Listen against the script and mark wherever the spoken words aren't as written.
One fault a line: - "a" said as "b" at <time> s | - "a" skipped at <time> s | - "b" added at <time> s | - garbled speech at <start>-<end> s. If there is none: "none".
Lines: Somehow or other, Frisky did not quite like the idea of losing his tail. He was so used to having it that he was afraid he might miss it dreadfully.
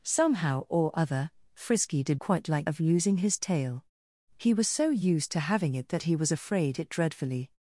- "not" skipped at 2.2 s
- "the idea" skipped at 2.7 s
- "he might miss" skipped at 6.8 s